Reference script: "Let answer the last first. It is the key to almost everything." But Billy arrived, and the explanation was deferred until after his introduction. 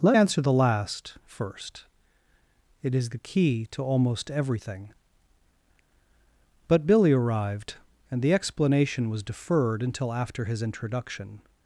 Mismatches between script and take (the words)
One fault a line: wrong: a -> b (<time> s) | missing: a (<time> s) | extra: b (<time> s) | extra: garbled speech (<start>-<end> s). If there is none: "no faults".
no faults